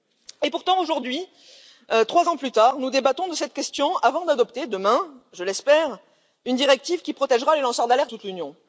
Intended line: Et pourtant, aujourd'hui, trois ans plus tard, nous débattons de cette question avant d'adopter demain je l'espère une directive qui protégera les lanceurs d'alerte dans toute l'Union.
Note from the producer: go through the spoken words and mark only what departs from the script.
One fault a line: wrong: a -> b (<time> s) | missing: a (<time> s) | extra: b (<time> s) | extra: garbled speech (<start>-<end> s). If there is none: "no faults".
missing: dans (8.1 s)